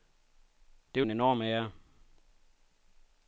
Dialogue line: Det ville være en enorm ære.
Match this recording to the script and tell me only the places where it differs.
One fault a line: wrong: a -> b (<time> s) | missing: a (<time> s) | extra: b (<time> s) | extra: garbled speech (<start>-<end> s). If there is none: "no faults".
missing: ville være (1.0 s)